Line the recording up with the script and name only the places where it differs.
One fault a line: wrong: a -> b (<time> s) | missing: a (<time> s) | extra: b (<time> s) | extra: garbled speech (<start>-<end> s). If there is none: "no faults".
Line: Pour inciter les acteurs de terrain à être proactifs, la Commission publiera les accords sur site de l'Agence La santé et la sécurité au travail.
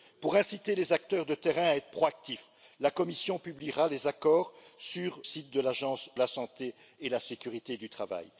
no faults